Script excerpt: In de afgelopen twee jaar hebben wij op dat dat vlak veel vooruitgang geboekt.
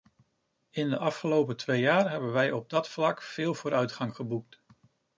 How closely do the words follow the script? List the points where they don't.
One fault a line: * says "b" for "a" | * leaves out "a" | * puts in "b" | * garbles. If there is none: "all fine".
* leaves out "dat"